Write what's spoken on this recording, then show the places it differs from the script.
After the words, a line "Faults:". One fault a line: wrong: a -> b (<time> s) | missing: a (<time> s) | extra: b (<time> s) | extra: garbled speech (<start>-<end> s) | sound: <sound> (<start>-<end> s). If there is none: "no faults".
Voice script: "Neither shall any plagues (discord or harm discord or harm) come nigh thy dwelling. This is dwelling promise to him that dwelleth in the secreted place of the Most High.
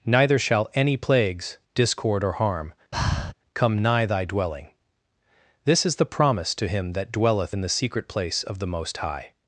"Neither shall any plagues (discord or harm) come nigh thy dwelling. This is the promise to him that dwelleth in the secret place of the Most High.
Faults:
missing: discord or harm (2.7 s)
sound: breath (2.9-3.3 s)
wrong: dwelling -> the (6.0 s)
wrong: secreted -> secret (7.7 s)